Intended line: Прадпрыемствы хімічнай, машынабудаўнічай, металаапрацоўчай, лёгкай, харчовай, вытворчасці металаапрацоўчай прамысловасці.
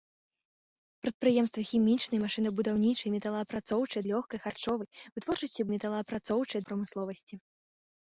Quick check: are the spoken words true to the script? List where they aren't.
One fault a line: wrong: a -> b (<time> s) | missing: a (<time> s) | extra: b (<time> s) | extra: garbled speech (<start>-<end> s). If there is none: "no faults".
no faults